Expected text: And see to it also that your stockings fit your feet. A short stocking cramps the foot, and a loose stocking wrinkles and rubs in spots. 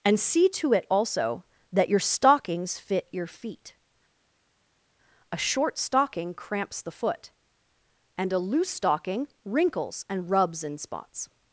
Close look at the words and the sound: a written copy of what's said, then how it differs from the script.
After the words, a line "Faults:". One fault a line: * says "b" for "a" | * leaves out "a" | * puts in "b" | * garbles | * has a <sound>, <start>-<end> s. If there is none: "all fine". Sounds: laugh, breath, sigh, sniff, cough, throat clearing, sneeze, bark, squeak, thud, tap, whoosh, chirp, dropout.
And see to it also that your stockings fit your feet. A short stocking cramps the foot, and a loose stocking wrinkles and rubs in spots.
Faults:
all fine